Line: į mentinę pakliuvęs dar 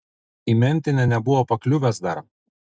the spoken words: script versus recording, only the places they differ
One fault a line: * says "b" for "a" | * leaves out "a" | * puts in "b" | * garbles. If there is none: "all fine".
* puts in "nebuvo"